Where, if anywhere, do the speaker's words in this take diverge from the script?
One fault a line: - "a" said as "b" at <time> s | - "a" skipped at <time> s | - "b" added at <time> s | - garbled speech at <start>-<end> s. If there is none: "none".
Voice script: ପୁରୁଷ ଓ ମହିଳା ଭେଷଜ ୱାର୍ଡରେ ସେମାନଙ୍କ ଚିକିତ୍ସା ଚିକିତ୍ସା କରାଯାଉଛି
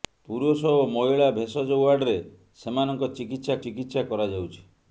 none